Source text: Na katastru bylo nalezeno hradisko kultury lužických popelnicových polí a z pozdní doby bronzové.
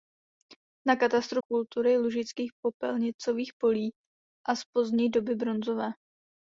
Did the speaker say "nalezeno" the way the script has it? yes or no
no